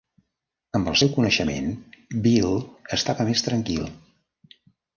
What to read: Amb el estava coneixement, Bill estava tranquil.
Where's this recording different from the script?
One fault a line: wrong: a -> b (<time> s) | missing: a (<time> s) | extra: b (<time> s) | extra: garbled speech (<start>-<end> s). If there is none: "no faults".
wrong: estava -> seu (1.0 s)
extra: més (3.3 s)